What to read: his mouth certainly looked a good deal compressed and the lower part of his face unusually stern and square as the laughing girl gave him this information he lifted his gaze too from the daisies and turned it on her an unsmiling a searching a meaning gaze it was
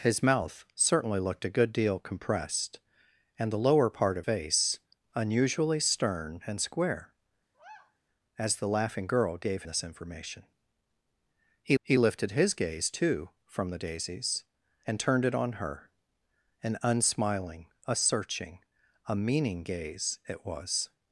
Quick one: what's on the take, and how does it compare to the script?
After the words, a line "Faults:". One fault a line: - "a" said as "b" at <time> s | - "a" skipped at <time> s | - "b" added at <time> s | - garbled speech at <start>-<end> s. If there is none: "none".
his mouth certainly looked a good deal compressed and the lower part of face unusually stern and square as the laughing girl gave this information he he lifted his gaze too from the daisies and turned it on her an unsmiling a searching a meaning gaze it was
Faults:
- "his" skipped at 4.2 s
- "him" skipped at 9.6 s
- "he" added at 11.8 s